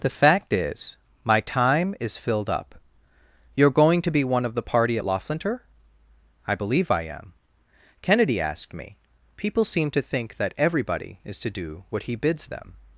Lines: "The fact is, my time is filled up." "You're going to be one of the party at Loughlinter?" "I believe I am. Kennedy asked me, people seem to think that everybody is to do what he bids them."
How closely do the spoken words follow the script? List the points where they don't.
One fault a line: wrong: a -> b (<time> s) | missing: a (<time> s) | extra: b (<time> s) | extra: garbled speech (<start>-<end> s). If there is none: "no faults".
no faults